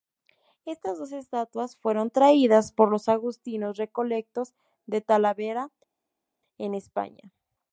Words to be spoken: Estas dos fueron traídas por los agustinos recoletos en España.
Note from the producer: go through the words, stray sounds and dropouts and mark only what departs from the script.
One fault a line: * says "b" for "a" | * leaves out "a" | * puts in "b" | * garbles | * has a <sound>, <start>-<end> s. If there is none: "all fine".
* puts in "estatuas"
* puts in "de Talavera"